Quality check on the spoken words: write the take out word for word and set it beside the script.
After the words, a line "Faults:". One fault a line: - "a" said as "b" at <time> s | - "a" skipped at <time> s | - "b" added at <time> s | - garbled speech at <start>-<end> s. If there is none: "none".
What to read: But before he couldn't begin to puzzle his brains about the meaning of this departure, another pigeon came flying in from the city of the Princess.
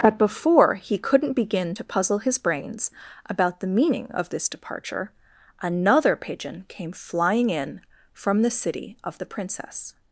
But before he couldn't begin to puzzle his brains about the meaning of this departure, another pigeon came flying in from the city of the Princess.
Faults:
none